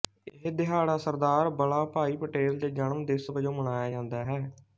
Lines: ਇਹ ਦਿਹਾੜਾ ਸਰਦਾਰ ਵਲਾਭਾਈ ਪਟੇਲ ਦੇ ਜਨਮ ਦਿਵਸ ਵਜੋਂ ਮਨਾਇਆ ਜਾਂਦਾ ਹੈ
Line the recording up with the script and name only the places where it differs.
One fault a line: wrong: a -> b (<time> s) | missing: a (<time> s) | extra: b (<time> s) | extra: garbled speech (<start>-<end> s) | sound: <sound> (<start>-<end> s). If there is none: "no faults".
no faults